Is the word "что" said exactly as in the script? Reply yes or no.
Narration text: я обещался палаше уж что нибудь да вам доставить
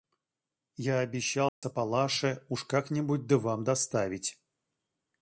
no